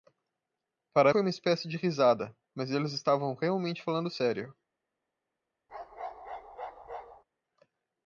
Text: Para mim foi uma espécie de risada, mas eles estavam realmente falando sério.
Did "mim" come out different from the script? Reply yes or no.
yes